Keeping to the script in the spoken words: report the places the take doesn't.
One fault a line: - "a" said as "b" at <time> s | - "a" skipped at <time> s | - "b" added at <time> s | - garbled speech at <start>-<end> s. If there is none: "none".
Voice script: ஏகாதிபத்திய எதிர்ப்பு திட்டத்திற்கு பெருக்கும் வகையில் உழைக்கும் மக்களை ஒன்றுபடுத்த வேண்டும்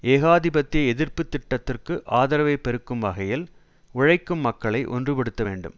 - "ஆதரவை" added at 2.2 s